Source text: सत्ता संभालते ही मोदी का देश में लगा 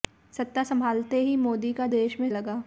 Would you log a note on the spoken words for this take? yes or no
no